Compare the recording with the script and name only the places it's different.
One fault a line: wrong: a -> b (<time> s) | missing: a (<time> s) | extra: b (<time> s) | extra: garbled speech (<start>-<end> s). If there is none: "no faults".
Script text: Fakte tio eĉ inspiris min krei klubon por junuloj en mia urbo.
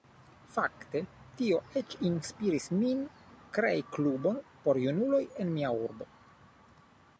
no faults